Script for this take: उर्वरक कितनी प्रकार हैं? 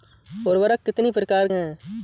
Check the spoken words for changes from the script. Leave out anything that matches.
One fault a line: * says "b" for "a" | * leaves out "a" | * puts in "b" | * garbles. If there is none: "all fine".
all fine